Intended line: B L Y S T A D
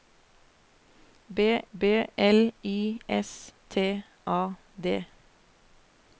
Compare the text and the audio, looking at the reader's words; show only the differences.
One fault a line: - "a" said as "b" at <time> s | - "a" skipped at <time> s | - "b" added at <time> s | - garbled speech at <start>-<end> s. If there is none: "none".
- "b" added at 1.8 s